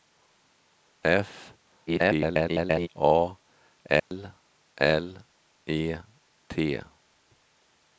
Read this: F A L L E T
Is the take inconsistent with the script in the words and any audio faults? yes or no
yes